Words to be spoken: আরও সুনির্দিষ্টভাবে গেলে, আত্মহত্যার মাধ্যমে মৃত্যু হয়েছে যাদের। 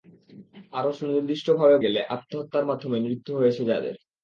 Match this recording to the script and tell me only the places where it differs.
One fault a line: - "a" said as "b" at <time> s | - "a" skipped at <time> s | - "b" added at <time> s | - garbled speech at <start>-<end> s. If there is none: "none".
none